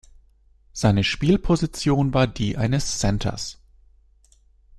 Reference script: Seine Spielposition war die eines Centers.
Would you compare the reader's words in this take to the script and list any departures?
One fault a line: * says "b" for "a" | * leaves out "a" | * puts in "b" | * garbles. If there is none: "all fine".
all fine